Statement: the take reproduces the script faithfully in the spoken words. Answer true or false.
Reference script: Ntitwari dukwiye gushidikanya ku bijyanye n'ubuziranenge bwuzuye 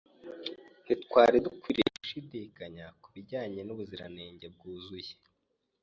true